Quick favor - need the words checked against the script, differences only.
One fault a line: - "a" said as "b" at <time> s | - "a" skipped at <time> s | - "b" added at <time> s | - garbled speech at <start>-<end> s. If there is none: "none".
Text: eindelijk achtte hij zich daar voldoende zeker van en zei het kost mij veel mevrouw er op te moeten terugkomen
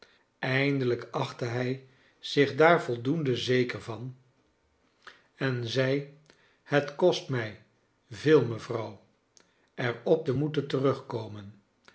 none